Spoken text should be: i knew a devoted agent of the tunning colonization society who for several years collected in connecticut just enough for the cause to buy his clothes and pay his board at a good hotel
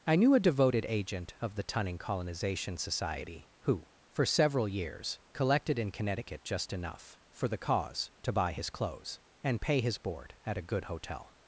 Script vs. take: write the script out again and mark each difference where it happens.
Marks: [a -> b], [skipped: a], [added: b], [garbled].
i knew a devoted agent of the tunning colonization society who for several years collected in connecticut just enough for the cause to buy his clothes and pay his board at a good hotel